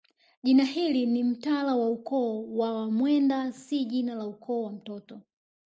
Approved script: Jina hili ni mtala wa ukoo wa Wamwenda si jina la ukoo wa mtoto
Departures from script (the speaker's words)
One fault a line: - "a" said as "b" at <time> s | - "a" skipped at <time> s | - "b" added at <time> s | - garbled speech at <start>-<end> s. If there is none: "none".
none